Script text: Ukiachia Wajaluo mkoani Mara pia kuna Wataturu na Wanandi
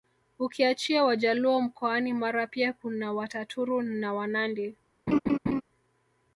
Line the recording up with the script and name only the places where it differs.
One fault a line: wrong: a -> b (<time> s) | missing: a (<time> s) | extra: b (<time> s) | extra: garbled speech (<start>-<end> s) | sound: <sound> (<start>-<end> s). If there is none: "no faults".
sound: laugh (5.1-5.6 s)